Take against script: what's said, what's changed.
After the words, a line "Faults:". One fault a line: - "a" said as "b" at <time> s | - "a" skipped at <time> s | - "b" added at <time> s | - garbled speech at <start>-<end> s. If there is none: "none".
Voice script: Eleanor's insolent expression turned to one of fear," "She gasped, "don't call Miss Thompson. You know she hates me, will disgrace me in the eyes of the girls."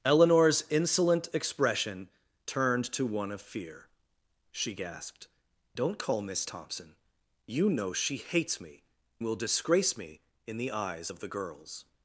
Eleanor's insolent expression turned to one of fear," "She gasped, "don't call Miss Thompson. You know she hates me, will disgrace me in the eyes of the girls."
Faults:
none